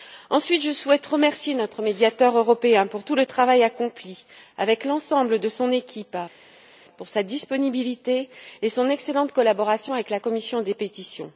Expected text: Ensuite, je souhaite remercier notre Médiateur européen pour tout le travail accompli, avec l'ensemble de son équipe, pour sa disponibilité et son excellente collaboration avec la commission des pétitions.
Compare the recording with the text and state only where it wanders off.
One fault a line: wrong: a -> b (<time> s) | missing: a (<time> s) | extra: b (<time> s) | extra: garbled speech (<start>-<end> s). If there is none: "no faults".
no faults